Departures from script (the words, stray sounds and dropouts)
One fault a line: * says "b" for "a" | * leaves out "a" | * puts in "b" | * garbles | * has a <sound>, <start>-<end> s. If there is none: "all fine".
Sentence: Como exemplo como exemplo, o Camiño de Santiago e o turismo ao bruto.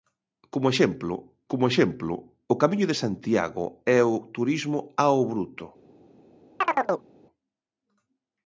* has a chirp, 6.6-7.1 s